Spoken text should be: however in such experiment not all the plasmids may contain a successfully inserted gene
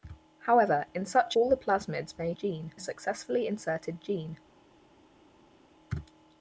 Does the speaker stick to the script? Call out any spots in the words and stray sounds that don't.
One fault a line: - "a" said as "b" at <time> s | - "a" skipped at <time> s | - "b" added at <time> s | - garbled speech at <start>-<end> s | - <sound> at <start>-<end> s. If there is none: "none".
- "experiment not" skipped at 1.4 s
- "contain" said as "gene" at 2.3 s